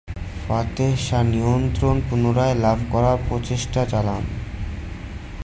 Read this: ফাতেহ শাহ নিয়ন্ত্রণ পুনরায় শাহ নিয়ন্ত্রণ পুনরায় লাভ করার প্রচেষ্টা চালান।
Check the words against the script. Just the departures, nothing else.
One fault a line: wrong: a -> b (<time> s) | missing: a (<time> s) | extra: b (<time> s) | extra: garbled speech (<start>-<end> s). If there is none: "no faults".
missing: শাহ নিয়ন্ত্রণ পুনরায় (2.5 s)